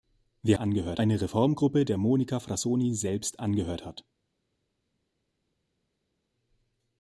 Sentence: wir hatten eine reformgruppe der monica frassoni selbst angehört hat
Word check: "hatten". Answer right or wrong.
wrong